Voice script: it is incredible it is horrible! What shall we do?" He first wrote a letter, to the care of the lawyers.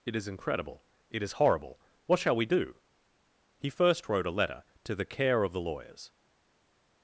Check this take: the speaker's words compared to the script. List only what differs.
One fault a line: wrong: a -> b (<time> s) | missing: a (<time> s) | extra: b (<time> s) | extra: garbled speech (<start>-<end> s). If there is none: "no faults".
no faults